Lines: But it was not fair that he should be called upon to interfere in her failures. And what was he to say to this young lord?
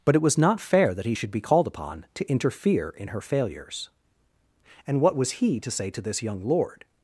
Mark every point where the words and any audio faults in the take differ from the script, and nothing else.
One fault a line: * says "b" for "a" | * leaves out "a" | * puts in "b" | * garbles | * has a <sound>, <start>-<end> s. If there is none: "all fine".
all fine